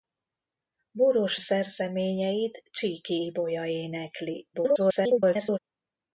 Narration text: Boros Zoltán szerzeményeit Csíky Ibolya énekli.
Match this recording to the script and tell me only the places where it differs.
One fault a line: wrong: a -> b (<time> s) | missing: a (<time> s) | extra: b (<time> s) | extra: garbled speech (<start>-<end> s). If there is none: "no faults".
missing: Zoltán (1.4 s)
extra: garbled speech (4.5-5.6 s)